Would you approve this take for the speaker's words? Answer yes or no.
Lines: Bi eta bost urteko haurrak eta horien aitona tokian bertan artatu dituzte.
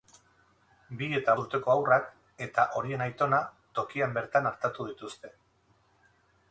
no